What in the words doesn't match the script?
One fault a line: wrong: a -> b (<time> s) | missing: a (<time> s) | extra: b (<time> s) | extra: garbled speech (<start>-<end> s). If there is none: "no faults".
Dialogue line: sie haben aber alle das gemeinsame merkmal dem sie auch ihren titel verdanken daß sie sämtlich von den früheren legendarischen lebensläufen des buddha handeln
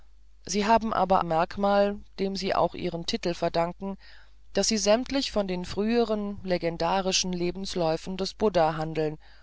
missing: alle das gemeinsame (1.2 s)